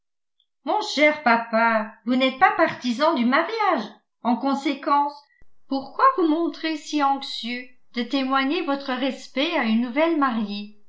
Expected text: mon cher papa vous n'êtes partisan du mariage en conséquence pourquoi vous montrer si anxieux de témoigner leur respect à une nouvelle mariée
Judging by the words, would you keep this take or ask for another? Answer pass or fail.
fail